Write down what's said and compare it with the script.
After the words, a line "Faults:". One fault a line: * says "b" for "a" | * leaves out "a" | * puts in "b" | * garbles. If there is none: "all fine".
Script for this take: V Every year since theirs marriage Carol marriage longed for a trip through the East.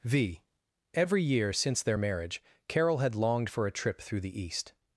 V Every year since their marriage Carol had longed for a trip through the East.
Faults:
* says "their" for "theirs"
* says "had" for "marriage"